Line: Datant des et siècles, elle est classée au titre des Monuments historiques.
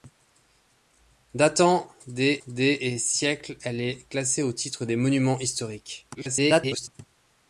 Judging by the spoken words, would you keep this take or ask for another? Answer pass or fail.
fail